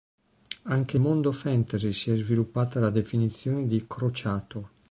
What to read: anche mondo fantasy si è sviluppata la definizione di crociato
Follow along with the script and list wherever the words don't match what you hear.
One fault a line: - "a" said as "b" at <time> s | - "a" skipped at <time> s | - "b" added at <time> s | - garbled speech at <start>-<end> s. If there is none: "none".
none